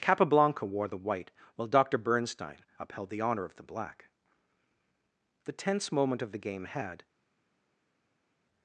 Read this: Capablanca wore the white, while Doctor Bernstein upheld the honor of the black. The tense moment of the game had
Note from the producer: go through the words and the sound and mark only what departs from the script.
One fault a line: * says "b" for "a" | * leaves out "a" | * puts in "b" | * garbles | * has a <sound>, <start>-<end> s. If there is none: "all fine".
all fine